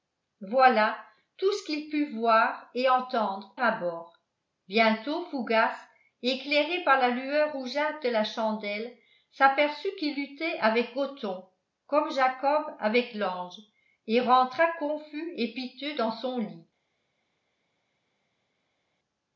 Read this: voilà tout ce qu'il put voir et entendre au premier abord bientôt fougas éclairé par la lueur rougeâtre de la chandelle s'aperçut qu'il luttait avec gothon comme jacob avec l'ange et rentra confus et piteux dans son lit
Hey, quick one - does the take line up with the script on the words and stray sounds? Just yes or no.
no